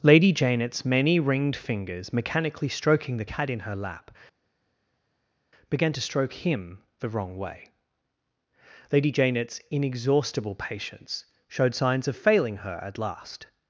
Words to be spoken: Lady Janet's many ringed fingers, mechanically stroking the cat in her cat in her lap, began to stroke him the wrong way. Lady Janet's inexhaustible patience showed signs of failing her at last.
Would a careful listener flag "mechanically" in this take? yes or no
no